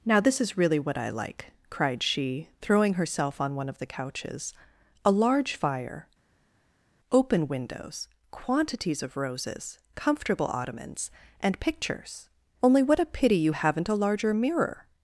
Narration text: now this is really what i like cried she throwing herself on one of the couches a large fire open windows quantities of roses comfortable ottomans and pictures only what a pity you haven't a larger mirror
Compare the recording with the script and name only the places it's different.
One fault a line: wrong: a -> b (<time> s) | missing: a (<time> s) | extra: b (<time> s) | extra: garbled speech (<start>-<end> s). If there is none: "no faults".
no faults